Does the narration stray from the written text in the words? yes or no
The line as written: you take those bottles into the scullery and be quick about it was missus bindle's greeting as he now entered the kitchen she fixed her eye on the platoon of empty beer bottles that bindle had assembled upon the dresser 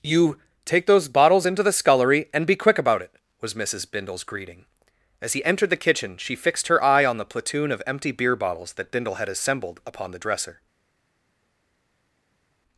yes